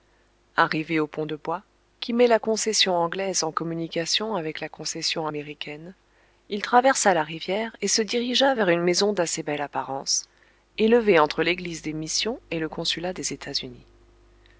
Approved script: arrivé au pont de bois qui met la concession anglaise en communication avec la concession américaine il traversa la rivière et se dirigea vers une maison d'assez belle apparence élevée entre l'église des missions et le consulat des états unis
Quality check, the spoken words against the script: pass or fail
pass